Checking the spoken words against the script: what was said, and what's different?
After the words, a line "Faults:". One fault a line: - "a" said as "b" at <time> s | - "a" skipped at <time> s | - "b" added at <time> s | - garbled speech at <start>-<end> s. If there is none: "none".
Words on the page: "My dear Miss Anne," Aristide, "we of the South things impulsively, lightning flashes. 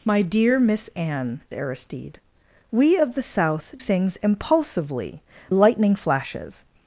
"My dear Miss Anne," Aristide, "we of the South things impulsively, lightning flashes.
Faults:
none